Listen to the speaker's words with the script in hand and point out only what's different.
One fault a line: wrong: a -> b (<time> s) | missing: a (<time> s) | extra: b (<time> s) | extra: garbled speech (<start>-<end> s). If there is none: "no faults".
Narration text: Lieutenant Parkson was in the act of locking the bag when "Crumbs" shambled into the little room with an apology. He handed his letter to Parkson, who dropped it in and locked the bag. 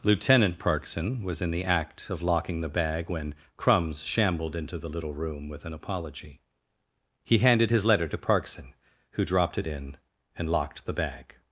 no faults